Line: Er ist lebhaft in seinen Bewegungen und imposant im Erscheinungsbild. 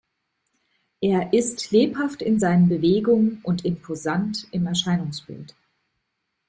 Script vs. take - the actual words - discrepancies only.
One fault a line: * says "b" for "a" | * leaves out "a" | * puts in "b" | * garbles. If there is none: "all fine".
all fine